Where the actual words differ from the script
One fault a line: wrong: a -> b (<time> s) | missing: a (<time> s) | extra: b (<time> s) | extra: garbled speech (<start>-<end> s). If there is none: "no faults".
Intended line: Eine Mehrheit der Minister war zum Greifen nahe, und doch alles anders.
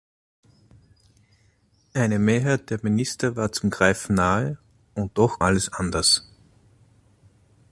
no faults